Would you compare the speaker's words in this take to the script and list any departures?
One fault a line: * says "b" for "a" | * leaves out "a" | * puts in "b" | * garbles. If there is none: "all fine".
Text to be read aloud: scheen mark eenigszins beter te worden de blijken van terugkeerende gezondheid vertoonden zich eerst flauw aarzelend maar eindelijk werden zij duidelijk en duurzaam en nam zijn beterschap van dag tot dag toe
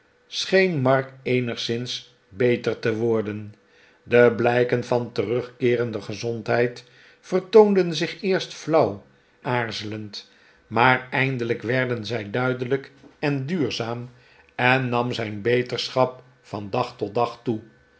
all fine